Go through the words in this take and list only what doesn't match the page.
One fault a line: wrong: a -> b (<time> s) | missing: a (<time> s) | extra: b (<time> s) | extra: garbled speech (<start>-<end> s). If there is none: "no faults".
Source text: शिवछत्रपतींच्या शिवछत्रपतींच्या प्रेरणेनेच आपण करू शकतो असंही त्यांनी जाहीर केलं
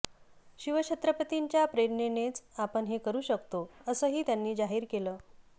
missing: शिवछत्रपतींच्या (1.6 s)
extra: हे (2.9 s)